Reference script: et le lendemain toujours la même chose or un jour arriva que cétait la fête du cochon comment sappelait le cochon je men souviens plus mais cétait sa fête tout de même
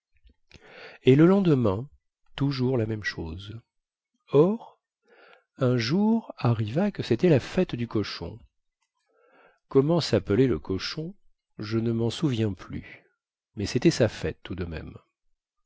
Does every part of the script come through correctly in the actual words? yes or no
no